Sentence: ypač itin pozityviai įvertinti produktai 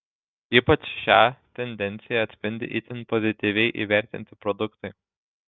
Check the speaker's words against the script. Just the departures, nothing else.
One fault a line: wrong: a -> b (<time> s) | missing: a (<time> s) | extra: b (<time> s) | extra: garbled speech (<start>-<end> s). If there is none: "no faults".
extra: šią tendenciją atspindi (1.0 s)